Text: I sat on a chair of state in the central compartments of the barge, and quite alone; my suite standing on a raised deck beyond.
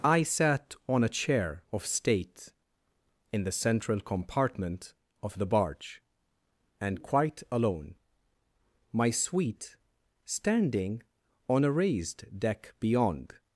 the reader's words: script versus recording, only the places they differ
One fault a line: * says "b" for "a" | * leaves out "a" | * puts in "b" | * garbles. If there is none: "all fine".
* says "compartment" for "compartments"